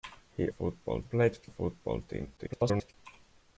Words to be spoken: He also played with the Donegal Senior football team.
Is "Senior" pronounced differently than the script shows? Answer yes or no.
yes